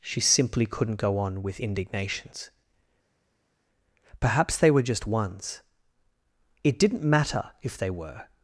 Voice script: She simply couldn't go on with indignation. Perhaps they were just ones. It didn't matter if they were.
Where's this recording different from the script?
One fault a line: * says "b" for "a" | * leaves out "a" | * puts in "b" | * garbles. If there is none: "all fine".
* says "indignations" for "indignation"